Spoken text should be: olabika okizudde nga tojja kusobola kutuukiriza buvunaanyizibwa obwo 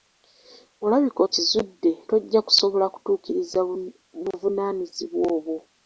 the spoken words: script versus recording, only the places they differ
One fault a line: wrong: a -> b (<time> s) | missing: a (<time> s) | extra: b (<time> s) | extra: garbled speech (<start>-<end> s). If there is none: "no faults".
missing: nga (1.9 s)